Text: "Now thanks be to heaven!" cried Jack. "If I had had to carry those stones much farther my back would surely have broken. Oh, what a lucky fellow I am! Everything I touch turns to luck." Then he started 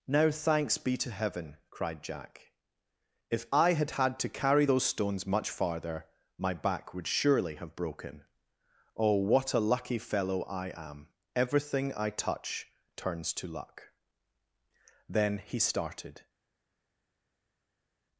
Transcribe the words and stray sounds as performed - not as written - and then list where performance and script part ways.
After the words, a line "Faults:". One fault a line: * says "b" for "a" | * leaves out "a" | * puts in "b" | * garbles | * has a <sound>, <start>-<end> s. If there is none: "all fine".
"Now thanks be to heaven!" cried Jack. "If I had had to carry those stones much farther my back would surely have broken. Oh, what a lucky fellow I am! Everything I touch turns to luck." Then he started
Faults:
all fine